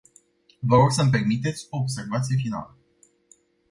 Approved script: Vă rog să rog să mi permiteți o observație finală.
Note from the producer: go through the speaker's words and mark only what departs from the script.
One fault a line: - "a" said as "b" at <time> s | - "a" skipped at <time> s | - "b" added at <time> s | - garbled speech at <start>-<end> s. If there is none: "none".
- "rog să" skipped at 1.0 s